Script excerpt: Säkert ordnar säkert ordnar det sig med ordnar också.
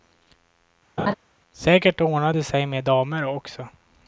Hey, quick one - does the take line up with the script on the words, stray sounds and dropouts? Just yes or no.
no